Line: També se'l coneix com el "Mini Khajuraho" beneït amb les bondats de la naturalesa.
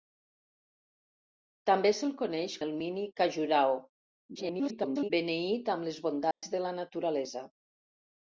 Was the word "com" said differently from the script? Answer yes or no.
yes